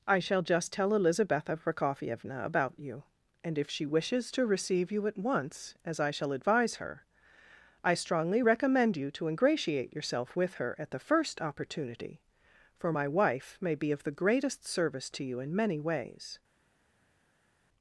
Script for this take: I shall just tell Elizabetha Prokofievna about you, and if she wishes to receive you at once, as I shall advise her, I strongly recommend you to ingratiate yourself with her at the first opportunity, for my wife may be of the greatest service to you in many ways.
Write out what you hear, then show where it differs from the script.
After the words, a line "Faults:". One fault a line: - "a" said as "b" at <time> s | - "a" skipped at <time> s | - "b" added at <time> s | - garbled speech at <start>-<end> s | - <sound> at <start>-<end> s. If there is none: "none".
I shall just tell Elizabetha Prokofievna about you, and if she wishes to receive you at once, as I shall advise her, I strongly recommend you to ingratiate yourself with her at the first opportunity, for my wife may be of the greatest service to you in many ways.
Faults:
none